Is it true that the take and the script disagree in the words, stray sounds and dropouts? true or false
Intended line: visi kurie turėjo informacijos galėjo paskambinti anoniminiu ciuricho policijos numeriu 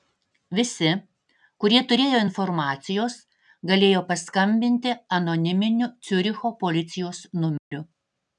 true